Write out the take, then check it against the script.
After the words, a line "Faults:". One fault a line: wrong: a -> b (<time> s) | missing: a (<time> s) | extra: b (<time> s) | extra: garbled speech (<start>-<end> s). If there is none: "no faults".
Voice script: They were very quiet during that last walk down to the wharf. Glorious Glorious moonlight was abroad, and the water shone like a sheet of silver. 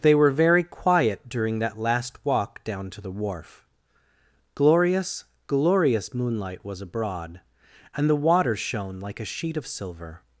They were very quiet during that last walk down to the wharf. Glorious Glorious moonlight was abroad, and the water shone like a sheet of silver.
Faults:
no faults